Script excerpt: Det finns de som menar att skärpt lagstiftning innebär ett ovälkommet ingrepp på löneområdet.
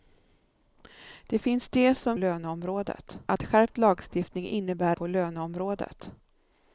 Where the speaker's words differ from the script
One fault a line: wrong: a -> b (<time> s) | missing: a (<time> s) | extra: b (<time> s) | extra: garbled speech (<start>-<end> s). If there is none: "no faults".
wrong: menar -> löneområdet (2.1 s)
missing: ett ovälkommet ingrepp (5.0 s)